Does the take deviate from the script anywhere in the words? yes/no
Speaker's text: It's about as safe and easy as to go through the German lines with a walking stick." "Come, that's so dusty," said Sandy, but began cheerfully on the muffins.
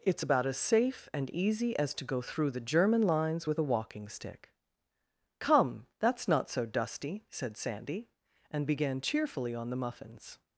yes